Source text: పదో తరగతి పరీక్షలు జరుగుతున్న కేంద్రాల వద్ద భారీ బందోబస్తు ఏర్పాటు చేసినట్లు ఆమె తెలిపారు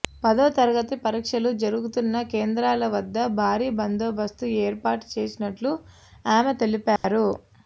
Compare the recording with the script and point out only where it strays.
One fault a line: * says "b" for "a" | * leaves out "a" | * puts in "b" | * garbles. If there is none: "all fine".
all fine